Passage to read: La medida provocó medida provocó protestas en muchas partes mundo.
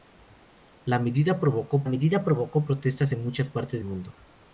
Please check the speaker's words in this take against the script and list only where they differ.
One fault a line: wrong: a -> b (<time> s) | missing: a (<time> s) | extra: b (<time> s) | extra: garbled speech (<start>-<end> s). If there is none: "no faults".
no faults